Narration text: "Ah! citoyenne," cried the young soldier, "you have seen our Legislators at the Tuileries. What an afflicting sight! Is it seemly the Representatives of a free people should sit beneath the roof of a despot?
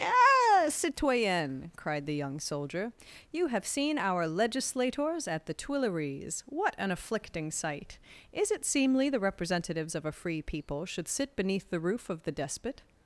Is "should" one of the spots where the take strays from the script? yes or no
no